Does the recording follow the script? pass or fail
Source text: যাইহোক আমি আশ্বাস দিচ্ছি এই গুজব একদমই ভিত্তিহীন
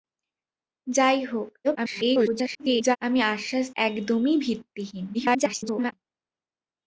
fail